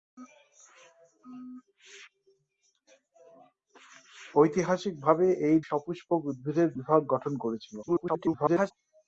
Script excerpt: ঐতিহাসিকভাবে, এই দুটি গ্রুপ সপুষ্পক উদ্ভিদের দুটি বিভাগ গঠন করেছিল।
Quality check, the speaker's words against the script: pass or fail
fail